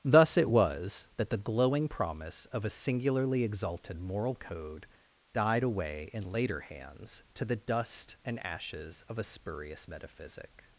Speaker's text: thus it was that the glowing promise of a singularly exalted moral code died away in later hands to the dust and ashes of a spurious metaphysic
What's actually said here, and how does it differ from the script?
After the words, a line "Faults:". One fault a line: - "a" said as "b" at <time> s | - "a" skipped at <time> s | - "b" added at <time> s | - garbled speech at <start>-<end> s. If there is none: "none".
thus it was that the glowing promise of a singularly exalted moral code died away in later hands to the dust and ashes of a spurious metaphysic
Faults:
none